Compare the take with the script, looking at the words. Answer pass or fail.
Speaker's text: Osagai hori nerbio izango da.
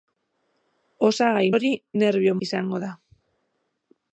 pass